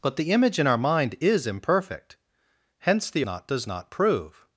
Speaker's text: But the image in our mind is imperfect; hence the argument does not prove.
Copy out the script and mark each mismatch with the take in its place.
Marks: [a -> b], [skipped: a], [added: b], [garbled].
But the image in our mind is imperfect; hence the [argument -> not] does not prove.